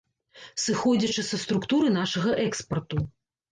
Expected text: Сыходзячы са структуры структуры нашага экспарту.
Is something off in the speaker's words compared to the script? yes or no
yes